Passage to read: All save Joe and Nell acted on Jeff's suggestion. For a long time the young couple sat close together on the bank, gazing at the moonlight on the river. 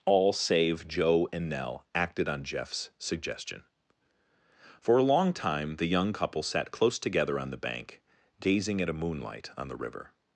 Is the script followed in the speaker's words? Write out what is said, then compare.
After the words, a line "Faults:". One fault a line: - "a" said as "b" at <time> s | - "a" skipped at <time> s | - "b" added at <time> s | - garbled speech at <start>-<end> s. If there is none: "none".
All save Joe and Nell acted on Jeff's suggestion. For a long time the young couple sat close together on the bank, gazing at a moonlight on the river.
Faults:
- "the" said as "a" at 8.9 s